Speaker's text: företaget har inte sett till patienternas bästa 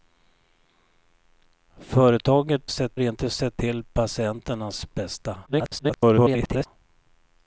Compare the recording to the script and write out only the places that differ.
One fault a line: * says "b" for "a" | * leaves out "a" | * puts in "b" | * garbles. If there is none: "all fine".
* says "sett" for "har"
* garbles